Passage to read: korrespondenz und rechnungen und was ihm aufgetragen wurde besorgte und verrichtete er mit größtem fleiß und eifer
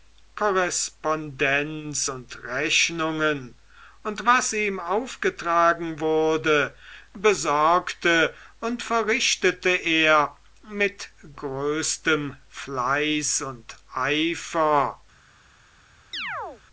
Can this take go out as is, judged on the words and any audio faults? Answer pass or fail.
fail